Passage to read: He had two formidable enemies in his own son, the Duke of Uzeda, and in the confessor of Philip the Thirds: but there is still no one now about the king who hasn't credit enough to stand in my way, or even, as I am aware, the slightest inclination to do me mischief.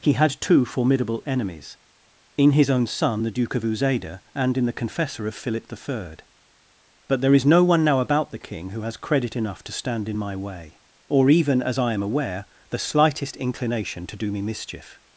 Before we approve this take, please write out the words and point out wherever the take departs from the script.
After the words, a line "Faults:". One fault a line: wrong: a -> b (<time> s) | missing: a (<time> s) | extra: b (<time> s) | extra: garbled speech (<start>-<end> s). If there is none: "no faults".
He had two formidable enemies in his own son, the Duke of Uzeda, and in the confessor of Philip the Third: but there is no one now about the king who has credit enough to stand in my way, or even, as I am aware, the slightest inclination to do me mischief.
Faults:
wrong: Thirds -> Third (5.8 s)
missing: still (7.4 s)
wrong: hasn't -> has (8.8 s)